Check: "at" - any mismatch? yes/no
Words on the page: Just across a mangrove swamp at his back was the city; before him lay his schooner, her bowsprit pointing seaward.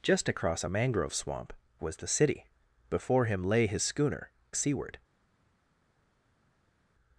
yes